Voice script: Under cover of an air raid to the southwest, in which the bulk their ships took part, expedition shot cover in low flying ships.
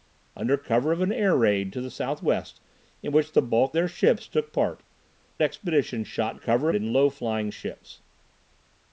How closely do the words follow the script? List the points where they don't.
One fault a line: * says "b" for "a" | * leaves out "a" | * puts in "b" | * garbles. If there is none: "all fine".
all fine